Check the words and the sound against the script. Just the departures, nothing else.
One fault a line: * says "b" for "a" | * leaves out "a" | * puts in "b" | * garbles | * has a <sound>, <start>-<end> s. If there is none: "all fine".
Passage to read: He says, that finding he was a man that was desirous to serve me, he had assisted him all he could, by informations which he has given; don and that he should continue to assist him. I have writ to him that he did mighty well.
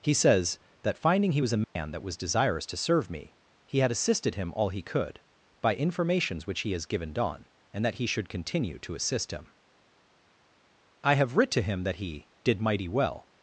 * has a dropout, 1.6-1.8 s